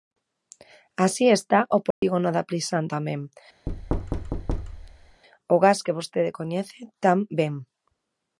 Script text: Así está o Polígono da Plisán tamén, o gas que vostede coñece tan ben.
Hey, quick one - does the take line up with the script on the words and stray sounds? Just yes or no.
no